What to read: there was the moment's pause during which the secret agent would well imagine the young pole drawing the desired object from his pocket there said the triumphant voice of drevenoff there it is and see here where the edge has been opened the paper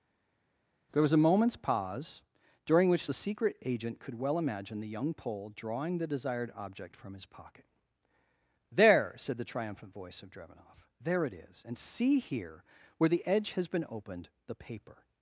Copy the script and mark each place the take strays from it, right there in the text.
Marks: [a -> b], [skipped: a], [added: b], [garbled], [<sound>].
there was [the -> a] moment's pause during which the secret agent [would -> could] well imagine the young pole drawing the desired object from his pocket there said the triumphant voice of drevenoff there it is and see here where the edge has been opened the paper